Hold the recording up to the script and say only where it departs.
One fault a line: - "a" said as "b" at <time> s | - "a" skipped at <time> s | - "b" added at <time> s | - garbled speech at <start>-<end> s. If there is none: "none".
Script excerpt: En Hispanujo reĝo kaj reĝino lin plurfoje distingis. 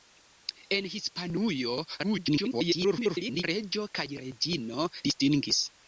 - garbled speech at 2.0-3.4 s
- "lin plurfoje" skipped at 4.9 s